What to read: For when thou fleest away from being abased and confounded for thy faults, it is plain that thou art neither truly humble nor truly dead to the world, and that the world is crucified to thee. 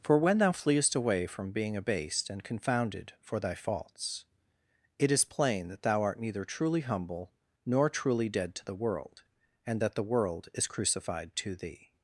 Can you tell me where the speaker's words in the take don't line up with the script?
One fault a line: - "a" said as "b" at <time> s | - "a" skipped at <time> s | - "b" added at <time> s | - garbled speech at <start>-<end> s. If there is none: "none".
none